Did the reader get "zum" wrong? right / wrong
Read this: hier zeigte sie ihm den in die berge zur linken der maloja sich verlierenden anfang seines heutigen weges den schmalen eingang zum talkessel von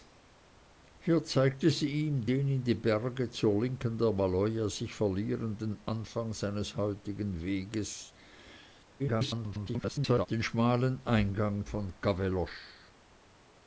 wrong